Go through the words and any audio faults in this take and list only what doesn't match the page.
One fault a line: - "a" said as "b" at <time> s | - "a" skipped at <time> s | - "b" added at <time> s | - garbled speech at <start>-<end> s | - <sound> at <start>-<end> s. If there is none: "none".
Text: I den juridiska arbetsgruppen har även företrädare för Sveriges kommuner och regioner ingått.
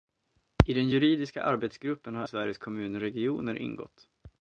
- "även företrädare för" skipped at 2.2 s
- "och" skipped at 3.0 s